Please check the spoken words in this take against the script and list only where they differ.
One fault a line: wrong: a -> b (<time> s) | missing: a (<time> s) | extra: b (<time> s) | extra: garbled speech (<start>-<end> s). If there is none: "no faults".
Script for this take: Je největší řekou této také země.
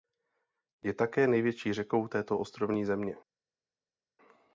extra: také (0.9 s)
wrong: také -> ostrovní (2.4 s)